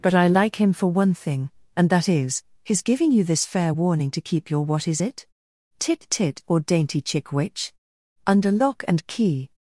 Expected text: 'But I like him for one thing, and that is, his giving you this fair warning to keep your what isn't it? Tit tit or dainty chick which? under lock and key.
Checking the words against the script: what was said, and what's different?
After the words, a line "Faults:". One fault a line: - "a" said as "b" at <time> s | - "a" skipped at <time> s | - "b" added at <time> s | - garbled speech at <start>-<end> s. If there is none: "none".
'But I like him for one thing, and that is, his giving you this fair warning to keep your what is it? Tit tit or dainty chick which? under lock and key.
Faults:
- "isn't" said as "is" at 4.9 s